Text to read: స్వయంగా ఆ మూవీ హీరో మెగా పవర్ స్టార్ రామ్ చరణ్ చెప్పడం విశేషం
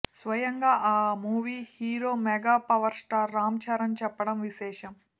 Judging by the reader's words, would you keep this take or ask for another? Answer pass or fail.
pass